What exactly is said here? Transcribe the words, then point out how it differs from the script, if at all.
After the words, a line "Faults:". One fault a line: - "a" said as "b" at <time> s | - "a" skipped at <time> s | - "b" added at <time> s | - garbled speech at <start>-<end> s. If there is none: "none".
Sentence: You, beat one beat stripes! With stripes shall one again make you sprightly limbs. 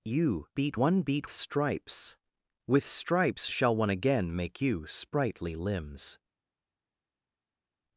You, beat one beat stripes! With stripes shall one again make you sprightly limbs.
Faults:
none